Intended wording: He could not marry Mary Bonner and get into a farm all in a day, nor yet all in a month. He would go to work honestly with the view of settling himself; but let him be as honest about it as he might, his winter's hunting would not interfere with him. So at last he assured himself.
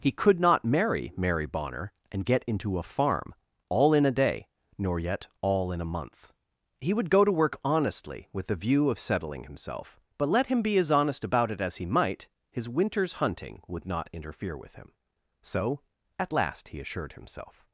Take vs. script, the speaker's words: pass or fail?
pass